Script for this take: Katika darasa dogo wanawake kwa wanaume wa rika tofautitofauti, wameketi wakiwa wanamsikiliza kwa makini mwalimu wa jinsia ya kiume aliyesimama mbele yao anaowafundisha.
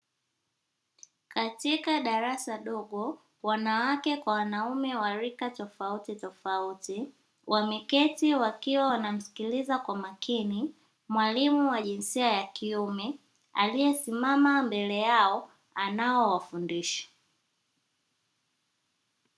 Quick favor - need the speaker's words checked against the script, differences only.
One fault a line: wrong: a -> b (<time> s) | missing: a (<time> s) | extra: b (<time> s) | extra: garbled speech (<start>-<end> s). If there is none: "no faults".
no faults